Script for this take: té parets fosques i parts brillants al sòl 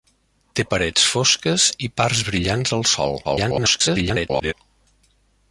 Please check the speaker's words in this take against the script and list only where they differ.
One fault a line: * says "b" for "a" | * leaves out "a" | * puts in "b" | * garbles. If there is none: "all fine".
* garbles